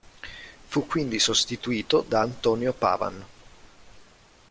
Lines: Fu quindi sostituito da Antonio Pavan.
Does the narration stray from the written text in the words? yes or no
no